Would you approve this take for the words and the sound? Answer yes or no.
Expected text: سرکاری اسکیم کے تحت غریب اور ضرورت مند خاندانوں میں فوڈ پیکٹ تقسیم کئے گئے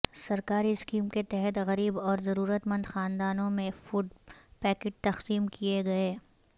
yes